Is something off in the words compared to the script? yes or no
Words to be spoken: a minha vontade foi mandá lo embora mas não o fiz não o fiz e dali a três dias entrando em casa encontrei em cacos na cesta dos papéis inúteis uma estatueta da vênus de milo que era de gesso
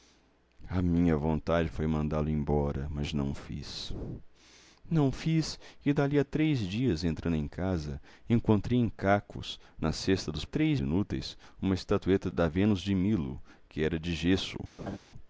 yes